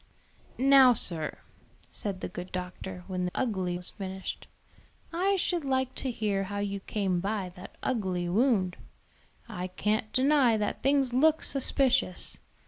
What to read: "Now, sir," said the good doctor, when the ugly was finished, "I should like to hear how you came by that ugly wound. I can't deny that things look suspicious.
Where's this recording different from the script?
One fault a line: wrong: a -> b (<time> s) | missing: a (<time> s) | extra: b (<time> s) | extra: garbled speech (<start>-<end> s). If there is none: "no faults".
no faults